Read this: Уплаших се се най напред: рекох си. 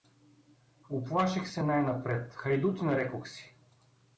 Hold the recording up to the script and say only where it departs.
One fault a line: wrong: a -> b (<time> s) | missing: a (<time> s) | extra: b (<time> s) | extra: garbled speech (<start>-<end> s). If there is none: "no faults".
missing: се (1.6 s)
extra: хайдутин (2.3 s)